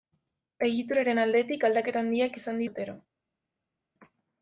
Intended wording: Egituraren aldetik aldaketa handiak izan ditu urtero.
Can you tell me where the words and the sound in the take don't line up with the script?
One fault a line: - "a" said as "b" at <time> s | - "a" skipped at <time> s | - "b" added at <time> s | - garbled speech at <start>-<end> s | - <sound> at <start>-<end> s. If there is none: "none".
- "ditu" skipped at 2.6 s